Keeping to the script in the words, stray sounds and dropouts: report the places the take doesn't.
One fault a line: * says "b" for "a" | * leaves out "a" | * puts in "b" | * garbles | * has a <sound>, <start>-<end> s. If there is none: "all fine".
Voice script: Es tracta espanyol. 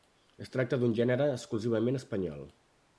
* puts in "d'un gènere exclusivament"